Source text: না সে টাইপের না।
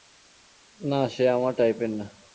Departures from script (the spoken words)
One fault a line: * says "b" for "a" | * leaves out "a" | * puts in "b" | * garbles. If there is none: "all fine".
* puts in "আমার"